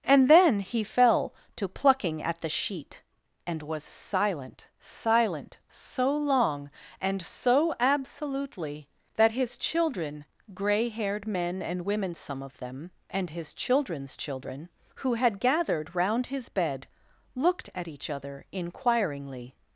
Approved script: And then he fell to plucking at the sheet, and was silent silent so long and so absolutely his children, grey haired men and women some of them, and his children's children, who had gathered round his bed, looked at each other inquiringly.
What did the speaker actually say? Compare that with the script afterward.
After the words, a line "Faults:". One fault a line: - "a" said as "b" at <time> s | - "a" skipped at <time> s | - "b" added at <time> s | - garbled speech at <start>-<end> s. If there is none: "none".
And then he fell to plucking at the sheet, and was silent silent so long and so absolutely that his children, grey haired men and women some of them, and his children's children, who had gathered round his bed, looked at each other inquiringly.
Faults:
- "that" added at 9.1 s